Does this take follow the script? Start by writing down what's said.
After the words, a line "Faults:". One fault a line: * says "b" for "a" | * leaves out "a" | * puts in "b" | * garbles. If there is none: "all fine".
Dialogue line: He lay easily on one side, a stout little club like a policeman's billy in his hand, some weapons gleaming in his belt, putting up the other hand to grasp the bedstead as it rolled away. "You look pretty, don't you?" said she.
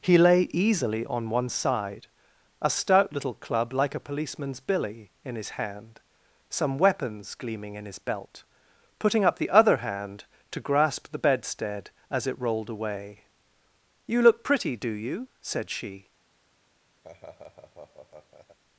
He lay easily on one side, a stout little club like a policeman's billy in his hand, some weapons gleaming in his belt, putting up the other hand to grasp the bedstead as it rolled away. "You look pretty, do you?" said she.
Faults:
* says "do" for "don't"